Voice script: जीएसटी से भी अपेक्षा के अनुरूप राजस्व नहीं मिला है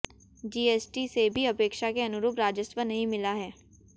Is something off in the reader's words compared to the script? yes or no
no